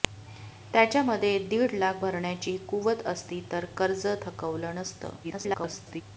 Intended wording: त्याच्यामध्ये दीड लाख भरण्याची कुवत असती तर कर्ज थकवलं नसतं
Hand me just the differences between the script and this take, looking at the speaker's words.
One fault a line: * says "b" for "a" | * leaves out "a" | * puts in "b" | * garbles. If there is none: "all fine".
* garbles